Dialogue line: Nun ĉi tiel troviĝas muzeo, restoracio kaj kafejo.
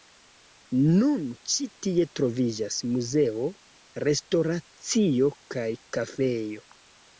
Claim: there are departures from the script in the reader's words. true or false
true